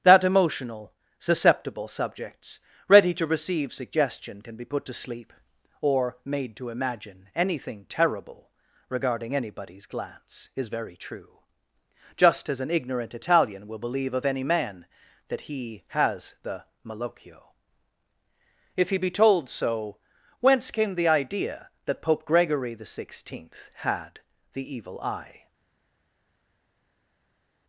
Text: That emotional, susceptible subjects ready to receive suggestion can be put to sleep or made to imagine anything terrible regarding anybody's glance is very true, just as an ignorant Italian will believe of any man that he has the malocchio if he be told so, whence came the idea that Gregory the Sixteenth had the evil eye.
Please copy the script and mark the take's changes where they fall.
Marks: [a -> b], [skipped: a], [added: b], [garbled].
That emotional, susceptible subjects ready to receive suggestion can be put to sleep or made to imagine anything terrible regarding anybody's glance is very true, just as an ignorant Italian will believe of any man that he has the malocchio if he be told so, whence came the idea that [added: Pope] Gregory the Sixteenth had the evil eye.